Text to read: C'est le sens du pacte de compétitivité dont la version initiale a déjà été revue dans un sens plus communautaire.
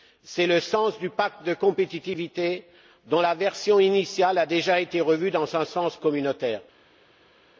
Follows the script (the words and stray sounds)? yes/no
no